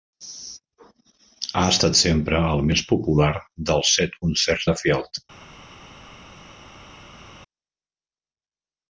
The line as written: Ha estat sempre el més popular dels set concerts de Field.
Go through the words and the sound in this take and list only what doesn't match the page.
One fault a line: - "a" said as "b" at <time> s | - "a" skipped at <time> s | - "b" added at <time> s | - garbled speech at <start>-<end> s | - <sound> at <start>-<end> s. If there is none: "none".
none